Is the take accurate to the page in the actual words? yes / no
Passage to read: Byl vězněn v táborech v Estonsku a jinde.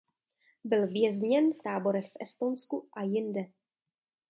yes